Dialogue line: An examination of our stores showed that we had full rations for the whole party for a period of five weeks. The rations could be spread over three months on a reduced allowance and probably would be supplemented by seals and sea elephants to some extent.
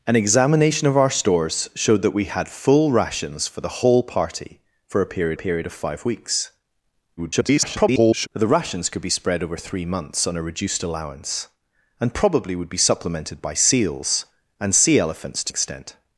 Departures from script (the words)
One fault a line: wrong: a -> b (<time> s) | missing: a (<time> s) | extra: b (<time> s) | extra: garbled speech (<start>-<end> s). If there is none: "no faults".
extra: period (5.3 s)
extra: garbled speech (7.2-8.3 s)
missing: some (15.5 s)